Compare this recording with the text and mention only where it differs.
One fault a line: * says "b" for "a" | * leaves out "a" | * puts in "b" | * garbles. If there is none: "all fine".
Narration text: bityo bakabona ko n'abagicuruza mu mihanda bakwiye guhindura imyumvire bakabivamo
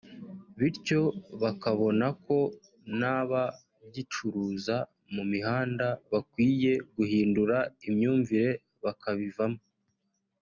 all fine